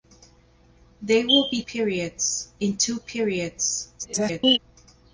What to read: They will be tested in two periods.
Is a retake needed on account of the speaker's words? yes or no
yes